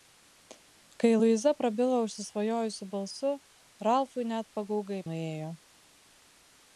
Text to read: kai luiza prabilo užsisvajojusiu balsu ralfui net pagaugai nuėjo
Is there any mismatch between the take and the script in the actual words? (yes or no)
no